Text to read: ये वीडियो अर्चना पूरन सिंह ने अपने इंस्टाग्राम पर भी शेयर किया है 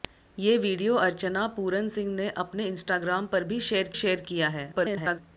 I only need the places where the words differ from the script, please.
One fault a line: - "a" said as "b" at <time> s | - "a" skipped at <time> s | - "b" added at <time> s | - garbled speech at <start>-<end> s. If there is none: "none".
- "शेयर" added at 3.9 s
- garbled speech at 4.7-5.2 s